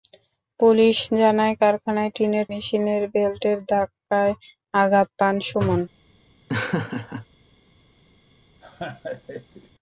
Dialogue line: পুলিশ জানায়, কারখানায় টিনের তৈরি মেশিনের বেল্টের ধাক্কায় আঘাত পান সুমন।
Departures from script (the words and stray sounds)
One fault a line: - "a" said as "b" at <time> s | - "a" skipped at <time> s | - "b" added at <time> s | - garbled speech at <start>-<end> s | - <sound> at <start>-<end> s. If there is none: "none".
- "তৈরি" skipped at 2.5 s
- laugh at 6.5-7.3 s
- laugh at 8.6-9.7 s